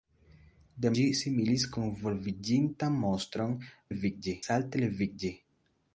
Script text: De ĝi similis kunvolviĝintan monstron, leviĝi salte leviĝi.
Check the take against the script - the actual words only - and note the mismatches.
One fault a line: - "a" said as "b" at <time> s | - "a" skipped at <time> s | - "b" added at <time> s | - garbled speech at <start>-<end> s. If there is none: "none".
none